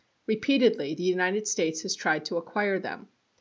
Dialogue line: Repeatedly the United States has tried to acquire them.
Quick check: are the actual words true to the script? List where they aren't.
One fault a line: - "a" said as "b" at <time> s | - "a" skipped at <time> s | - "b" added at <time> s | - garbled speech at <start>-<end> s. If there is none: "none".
none